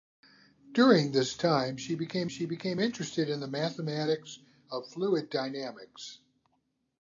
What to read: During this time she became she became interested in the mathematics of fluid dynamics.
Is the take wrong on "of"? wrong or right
right